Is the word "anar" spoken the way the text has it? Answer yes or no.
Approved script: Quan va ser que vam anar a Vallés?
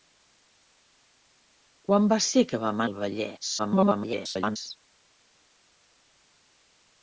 no